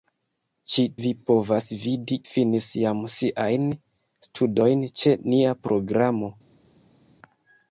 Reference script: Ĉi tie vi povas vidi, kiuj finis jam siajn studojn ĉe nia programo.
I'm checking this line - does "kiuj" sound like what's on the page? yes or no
no